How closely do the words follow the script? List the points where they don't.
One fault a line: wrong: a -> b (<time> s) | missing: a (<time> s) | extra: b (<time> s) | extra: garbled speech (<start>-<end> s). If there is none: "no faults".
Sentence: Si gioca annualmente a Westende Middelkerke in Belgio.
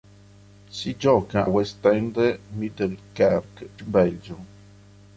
missing: annualmente a (1.5 s)
missing: in (3.7 s)